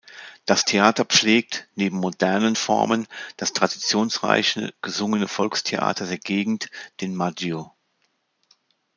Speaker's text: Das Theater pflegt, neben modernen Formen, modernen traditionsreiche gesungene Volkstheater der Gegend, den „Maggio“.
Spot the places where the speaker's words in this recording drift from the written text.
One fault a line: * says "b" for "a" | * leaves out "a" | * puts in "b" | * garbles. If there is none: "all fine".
* says "das" for "modernen"